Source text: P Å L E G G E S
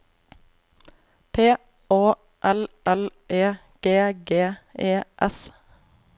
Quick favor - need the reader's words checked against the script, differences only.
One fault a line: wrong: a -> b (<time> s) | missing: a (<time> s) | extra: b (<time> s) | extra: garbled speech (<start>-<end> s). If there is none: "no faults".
extra: L (2.9 s)